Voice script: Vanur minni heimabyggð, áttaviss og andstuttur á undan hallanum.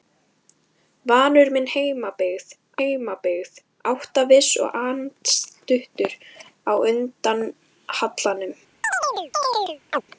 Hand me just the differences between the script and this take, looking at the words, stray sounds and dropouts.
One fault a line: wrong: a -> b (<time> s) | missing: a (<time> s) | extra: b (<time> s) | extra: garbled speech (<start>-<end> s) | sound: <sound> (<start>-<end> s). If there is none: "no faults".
extra: heimabyggð (2.8 s)
sound: chirp (8.8-10.0 s)